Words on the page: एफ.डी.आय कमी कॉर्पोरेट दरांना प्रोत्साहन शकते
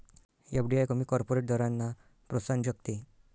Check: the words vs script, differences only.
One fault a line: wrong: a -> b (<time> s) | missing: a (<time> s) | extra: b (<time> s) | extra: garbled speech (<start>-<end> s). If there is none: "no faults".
no faults